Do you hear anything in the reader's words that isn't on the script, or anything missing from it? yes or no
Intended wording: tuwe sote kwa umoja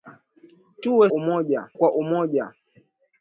yes